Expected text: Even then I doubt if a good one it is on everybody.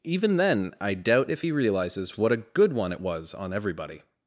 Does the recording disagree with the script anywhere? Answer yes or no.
yes